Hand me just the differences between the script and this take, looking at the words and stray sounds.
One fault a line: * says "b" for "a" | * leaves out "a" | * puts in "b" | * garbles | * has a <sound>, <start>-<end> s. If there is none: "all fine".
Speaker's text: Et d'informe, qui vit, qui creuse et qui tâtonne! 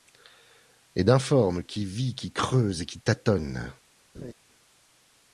* has a laugh, 4.1-4.3 s